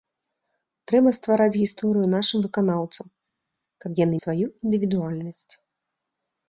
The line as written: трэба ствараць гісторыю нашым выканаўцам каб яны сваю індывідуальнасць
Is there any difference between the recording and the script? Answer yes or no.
no